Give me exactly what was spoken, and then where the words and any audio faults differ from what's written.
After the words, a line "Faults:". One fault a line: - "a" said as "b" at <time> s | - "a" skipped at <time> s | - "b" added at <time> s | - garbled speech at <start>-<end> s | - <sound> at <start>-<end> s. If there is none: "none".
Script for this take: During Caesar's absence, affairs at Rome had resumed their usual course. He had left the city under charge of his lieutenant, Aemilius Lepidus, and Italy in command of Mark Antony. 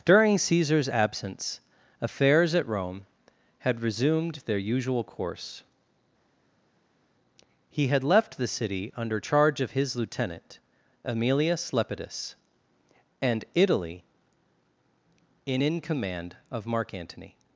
During Caesar's absence, affairs at Rome had resumed their usual course. He had left the city under charge of his lieutenant, Aemilius Lepidus, and Italy in in command of Mark Antony.
Faults:
- "in" added at 15.6 s